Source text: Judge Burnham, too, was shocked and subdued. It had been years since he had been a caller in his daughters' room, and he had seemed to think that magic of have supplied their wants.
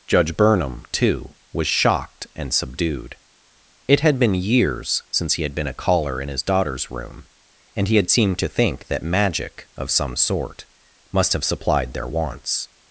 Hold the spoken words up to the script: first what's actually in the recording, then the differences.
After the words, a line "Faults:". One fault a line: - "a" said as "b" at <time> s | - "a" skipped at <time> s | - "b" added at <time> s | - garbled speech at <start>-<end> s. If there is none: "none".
Judge Burnham, too, was shocked and subdued. It had been years since he had been a caller in his daughters' room, and he had seemed to think that magic of some sort must have supplied their wants.
Faults:
- "some sort must" added at 9.9 s